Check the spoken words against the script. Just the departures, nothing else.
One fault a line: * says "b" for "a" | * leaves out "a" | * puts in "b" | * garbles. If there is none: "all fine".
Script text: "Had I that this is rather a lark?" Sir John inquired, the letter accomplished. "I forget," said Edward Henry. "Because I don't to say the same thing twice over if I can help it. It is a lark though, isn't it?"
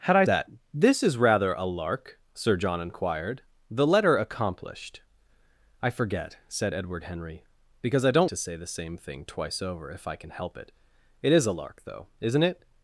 all fine